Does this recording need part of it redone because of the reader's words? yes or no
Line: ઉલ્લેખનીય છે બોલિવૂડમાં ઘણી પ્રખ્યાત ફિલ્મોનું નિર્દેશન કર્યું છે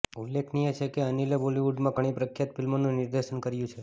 yes